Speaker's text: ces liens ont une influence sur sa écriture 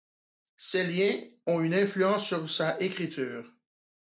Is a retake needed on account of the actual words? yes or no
no